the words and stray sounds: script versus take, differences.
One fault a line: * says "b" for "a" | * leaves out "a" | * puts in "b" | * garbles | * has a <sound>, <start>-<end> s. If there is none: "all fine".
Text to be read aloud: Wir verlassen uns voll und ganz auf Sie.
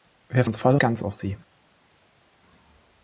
* leaves out "verlassen"
* leaves out "und"